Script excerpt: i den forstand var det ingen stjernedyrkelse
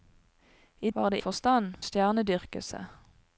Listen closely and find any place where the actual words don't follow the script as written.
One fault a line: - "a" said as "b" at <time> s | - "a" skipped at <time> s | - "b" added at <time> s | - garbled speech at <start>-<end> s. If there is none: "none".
- "den forstand" skipped at 0.9 s
- "ingen" said as "forstand" at 1.2 s